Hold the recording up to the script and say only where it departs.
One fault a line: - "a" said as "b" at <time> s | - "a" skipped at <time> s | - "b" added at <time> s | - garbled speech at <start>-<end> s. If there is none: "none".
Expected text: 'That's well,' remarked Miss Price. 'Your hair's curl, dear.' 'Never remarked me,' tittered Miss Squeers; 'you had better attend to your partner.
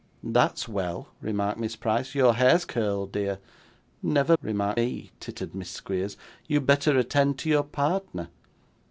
none